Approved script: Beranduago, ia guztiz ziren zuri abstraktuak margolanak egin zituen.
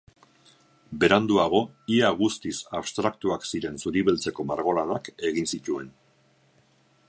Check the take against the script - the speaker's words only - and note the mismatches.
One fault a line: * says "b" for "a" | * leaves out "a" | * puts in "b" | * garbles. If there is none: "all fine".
* puts in "abstraktuak"
* says "beltzeko" for "abstraktuak"